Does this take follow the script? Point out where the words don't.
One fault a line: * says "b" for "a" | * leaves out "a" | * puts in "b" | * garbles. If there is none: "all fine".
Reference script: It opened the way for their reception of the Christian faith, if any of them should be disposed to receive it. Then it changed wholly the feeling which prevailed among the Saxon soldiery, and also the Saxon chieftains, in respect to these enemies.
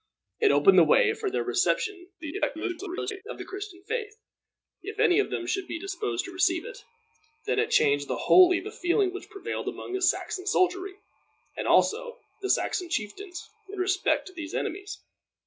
* garbles